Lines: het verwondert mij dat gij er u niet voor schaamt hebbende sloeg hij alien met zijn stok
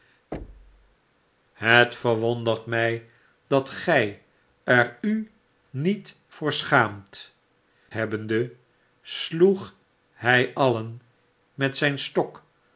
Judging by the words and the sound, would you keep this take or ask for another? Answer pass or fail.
fail